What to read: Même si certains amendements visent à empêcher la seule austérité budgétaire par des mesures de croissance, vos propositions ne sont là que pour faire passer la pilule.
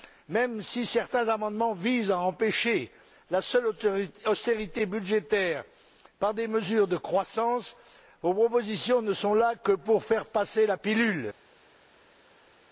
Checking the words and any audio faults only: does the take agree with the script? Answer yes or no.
yes